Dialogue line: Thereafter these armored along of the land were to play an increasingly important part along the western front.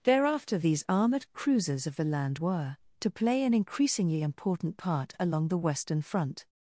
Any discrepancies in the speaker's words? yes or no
yes